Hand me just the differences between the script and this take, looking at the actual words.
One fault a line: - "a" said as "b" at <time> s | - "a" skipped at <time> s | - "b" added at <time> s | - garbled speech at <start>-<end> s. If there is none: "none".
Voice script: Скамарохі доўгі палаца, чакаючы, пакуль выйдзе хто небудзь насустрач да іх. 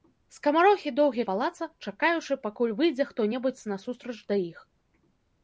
none